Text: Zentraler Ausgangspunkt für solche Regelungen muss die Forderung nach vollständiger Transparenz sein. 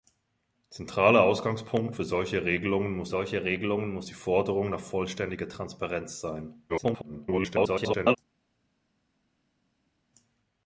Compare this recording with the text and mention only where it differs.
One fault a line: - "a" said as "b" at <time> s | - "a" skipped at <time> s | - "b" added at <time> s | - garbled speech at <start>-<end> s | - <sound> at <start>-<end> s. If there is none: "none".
- "solche Regelungen muss" added at 3.1 s
- garbled speech at 6.7-8.2 s